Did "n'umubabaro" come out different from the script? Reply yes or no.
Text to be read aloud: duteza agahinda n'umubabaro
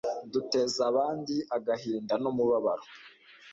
no